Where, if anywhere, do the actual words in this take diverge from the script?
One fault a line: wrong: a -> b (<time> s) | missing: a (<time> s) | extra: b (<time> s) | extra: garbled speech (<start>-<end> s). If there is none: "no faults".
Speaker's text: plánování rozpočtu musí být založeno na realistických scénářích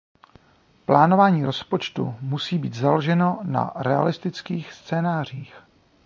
no faults